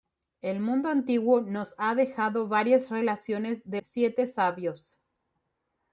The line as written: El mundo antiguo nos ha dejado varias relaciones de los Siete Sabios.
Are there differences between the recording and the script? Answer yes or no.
yes